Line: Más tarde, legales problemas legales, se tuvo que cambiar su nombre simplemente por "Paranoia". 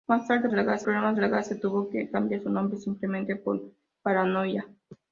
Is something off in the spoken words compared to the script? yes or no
no